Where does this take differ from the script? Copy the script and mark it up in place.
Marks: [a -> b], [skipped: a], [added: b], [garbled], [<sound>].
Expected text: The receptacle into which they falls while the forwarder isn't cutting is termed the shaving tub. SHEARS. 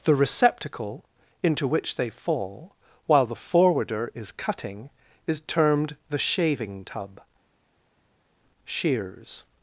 The receptacle into which they [falls -> fall] while the forwarder [isn't -> is] cutting is termed the shaving tub. SHEARS.